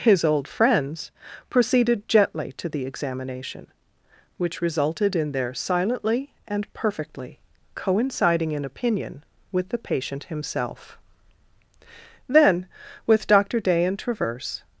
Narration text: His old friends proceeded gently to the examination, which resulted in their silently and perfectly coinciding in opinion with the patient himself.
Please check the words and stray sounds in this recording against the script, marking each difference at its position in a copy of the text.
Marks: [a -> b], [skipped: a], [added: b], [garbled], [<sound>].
His old friends proceeded gently to the examination, which resulted in their silently and perfectly coinciding in opinion with the patient himself. [added: Then with Doctor Day and Traverse]